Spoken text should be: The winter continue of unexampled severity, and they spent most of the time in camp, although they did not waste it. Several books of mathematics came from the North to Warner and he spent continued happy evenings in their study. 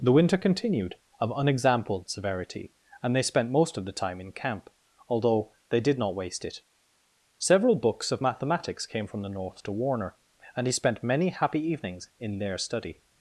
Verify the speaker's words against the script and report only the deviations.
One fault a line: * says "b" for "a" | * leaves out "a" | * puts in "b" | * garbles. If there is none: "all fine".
* says "continued" for "continue"
* says "many" for "continued"